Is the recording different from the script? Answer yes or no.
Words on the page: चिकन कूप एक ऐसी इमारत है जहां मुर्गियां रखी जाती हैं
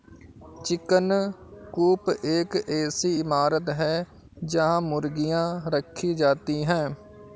no